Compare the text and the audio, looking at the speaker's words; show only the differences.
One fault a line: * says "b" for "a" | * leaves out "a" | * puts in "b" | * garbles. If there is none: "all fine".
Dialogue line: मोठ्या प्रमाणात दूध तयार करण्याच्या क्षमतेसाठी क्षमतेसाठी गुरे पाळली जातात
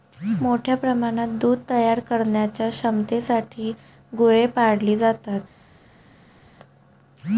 * leaves out "क्षमतेसाठी"